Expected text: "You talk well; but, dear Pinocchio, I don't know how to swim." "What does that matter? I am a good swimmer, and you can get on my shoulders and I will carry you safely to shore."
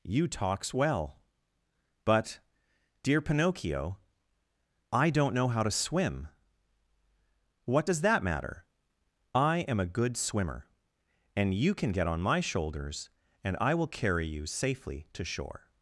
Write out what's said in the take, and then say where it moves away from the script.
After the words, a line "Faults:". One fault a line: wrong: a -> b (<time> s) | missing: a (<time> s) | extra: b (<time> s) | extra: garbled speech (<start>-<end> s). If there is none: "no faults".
"You talks well; but, dear Pinocchio, I don't know how to swim." "What does that matter? I am a good swimmer, and you can get on my shoulders and I will carry you safely to shore."
Faults:
wrong: talk -> talks (0.3 s)